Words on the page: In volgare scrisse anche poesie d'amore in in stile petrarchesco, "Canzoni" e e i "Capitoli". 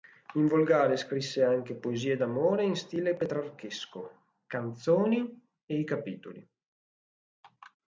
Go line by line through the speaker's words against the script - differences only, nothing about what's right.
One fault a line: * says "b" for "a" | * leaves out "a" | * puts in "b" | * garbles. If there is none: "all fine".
* leaves out "in"
* leaves out "e"